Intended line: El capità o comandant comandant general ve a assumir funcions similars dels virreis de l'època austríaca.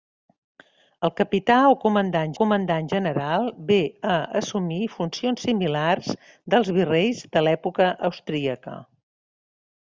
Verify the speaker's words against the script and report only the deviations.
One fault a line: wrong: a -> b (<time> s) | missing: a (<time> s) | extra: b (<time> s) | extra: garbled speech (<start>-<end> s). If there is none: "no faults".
no faults